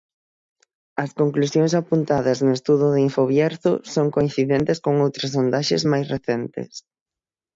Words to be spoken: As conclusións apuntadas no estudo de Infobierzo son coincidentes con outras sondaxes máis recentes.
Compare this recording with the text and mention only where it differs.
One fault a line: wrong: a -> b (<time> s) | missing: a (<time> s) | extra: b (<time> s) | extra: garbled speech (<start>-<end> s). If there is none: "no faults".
no faults